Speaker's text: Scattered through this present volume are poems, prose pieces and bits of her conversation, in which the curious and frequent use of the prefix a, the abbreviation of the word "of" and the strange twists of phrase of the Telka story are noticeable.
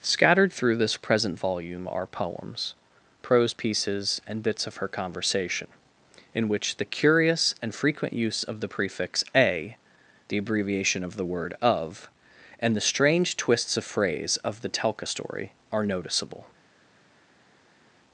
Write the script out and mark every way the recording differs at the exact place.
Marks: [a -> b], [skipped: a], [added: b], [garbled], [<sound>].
Scattered through this present volume are poems, prose pieces and bits of her conversation, in which the curious and frequent use of the prefix a, the abbreviation of the word "of" and the strange twists of phrase of the Telka story are noticeable.